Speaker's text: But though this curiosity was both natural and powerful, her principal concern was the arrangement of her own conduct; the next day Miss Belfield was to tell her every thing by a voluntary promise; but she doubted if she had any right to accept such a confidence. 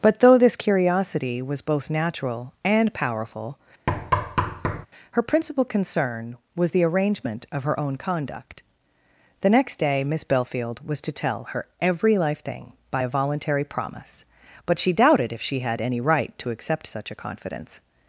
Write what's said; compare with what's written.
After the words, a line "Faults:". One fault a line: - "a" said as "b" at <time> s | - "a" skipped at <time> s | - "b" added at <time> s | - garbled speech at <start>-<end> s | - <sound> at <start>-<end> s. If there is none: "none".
But though this curiosity was both natural and powerful, her principal concern was the arrangement of her own conduct; the next day Miss Belfield was to tell her every life thing by a voluntary promise; but she doubted if she had any right to accept such a confidence.
Faults:
- thud at 3.9-4.9 s
- "life" added at 12.2 s